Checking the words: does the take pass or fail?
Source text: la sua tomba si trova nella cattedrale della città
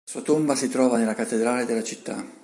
pass